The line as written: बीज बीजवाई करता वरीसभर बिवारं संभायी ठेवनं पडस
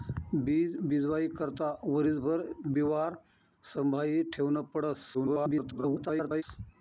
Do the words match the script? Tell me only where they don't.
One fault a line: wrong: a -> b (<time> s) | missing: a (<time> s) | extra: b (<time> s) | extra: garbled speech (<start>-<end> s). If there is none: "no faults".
extra: garbled speech (5.1-6.4 s)